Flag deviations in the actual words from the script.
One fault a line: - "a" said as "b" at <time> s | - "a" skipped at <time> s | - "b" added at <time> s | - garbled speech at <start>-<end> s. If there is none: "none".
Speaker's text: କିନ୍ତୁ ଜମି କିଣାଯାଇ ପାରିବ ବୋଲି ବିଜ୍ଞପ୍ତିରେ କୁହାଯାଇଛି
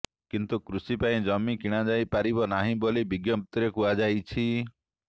- "କୃଷି ପାଇଁ" added at 0.6 s
- "ନାହିଁ" added at 2.5 s